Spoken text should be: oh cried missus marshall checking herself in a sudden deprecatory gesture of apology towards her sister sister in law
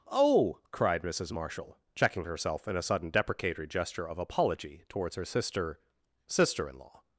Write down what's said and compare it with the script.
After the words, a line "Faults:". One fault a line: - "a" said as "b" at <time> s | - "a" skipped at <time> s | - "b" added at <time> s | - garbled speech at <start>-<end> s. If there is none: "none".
oh cried missus marshall checking herself in a sudden deprecatory gesture of apology towards her sister sister in law
Faults:
none